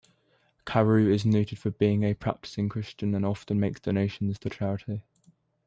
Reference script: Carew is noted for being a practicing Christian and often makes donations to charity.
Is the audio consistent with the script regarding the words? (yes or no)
yes